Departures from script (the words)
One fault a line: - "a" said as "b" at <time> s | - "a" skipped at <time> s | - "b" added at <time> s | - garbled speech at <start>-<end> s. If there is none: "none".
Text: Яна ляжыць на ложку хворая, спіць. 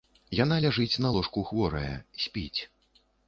none